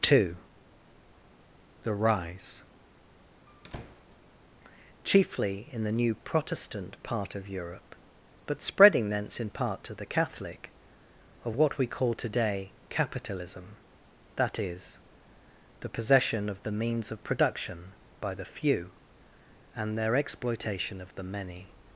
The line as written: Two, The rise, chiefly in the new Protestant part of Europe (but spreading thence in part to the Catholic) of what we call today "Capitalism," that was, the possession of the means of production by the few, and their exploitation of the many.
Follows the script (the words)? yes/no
no